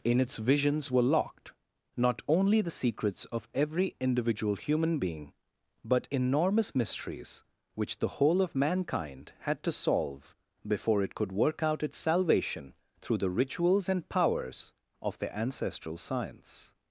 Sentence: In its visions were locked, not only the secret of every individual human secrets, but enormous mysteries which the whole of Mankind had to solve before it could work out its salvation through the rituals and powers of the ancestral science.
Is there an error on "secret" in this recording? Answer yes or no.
yes